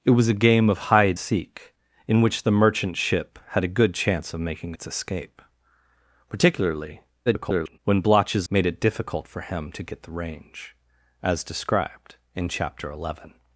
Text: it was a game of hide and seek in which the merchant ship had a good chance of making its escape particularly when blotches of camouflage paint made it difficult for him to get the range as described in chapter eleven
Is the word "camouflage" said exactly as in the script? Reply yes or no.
no